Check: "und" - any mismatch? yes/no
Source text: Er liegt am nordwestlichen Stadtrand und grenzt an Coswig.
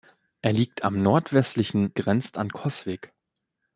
yes